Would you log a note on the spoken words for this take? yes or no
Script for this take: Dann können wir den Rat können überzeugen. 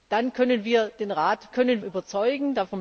no